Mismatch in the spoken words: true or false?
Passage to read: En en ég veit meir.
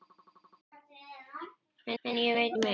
false